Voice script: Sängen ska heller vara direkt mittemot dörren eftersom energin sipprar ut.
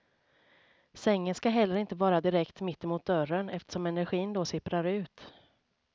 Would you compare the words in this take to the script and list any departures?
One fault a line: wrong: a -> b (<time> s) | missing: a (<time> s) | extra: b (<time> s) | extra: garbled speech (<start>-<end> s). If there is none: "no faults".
extra: inte (1.8 s)
extra: då (4.3 s)